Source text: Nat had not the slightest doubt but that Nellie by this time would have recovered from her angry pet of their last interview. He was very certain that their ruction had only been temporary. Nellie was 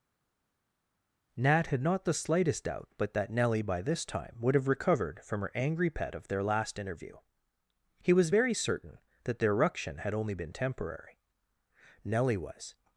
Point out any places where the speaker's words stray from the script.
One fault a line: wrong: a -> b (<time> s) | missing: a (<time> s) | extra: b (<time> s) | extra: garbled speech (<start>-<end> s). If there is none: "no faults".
no faults